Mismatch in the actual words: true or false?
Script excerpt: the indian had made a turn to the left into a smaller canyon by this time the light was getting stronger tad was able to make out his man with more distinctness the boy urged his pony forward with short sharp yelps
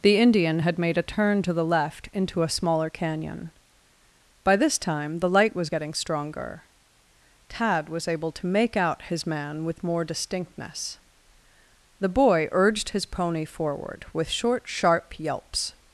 false